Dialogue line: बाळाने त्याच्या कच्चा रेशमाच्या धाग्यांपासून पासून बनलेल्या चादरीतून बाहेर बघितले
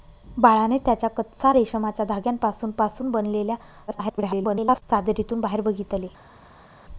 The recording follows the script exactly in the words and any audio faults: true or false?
false